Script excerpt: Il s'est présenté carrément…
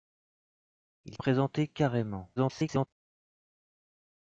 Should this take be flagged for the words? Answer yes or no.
yes